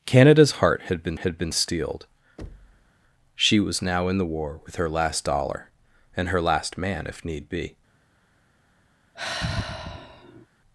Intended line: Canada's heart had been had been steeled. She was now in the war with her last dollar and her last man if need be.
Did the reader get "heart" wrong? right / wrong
right